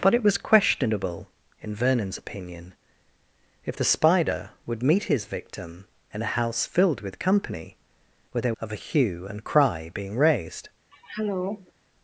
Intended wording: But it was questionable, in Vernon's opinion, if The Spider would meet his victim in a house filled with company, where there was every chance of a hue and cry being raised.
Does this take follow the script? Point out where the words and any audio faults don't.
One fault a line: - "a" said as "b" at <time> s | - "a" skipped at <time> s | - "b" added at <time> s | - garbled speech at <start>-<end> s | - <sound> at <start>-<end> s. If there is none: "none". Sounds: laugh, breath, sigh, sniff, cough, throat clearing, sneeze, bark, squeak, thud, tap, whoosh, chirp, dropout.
- "was every chance" skipped at 8.5 s
- throat clearing at 10.9-11.7 s